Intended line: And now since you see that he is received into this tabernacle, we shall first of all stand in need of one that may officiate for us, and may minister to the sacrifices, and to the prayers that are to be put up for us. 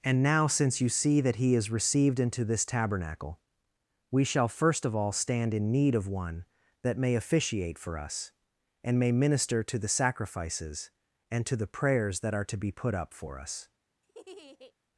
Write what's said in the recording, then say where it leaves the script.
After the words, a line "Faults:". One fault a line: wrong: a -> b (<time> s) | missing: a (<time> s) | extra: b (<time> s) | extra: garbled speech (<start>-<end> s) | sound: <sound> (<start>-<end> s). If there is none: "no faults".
And now since you see that he is received into this tabernacle, we shall first of all stand in need of one that may officiate for us, and may minister to the sacrifices, and to the prayers that are to be put up for us.
Faults:
sound: laugh (14.0-14.7 s)